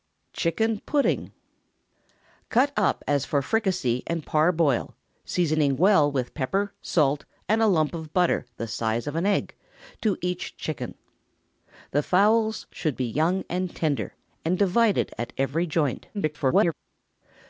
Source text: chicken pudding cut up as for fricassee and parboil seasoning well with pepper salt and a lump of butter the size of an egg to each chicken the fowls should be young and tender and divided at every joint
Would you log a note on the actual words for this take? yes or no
yes